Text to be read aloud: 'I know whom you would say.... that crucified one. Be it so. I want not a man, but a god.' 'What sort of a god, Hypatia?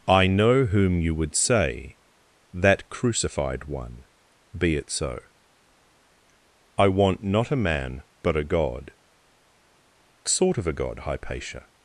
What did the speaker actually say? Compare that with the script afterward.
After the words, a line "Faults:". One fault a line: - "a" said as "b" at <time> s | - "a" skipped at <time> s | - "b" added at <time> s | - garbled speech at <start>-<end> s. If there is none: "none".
'I know whom you would say.... that crucified one. Be it so. I want not a man, but a god.' 'Sort of a god, Hypatia?
Faults:
- "What" skipped at 8.9 s